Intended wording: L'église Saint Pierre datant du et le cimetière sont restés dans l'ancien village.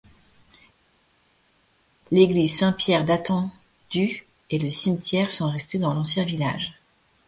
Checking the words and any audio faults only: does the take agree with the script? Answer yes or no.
yes